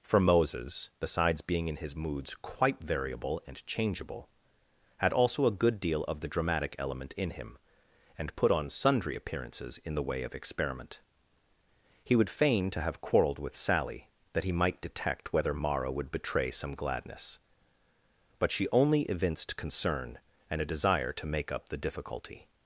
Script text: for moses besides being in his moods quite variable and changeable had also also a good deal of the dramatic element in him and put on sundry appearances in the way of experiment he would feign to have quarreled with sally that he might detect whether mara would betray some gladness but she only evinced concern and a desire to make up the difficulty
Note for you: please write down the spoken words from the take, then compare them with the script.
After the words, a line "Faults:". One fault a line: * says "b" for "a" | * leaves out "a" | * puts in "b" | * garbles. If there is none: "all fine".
for moses besides being in his moods quite variable and changeable had also a good deal of the dramatic element in him and put on sundry appearances in the way of experiment he would feign to have quarreled with sally that he might detect whether mara would betray some gladness but she only evinced concern and a desire to make up the difficulty
Faults:
* leaves out "also"